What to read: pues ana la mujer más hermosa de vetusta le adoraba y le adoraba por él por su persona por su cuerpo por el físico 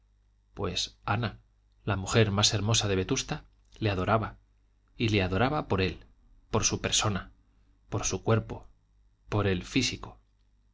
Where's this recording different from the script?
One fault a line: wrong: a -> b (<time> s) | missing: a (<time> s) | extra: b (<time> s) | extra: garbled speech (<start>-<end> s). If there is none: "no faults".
no faults